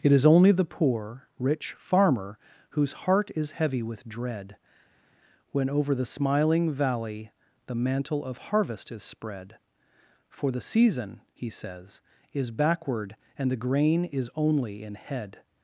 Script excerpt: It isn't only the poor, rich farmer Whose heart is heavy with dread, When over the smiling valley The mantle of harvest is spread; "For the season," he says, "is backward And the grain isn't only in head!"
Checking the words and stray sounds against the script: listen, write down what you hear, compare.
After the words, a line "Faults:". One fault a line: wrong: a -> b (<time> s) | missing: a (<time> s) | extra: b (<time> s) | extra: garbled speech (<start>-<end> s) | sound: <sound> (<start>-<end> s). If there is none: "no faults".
It is only the poor, rich farmer Whose heart is heavy with dread, When over the smiling valley The mantle of harvest is spread; "For the season," he says, "is backward And the grain is only in head!"
Faults:
wrong: isn't -> is (0.1 s)
wrong: isn't -> is (14.1 s)